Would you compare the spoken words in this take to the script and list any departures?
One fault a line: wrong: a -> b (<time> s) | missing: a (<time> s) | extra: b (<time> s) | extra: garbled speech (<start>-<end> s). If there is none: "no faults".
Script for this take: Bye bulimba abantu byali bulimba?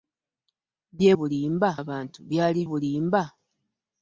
no faults